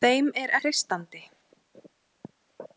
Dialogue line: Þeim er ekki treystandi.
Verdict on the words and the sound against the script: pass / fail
fail